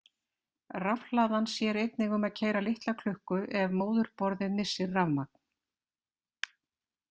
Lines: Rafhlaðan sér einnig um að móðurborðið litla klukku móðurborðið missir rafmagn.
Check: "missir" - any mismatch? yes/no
no